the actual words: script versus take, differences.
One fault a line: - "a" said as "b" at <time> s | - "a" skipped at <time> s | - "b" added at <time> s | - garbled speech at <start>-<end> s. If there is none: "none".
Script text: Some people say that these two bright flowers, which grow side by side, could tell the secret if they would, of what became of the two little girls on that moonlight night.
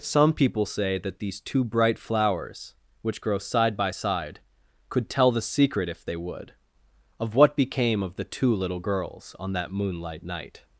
none